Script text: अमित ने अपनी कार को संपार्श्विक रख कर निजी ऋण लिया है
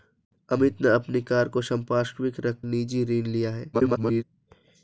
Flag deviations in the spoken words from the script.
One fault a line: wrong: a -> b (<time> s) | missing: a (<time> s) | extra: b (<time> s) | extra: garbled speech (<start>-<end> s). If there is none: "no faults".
missing: कर (2.6 s)
extra: garbled speech (3.7-4.2 s)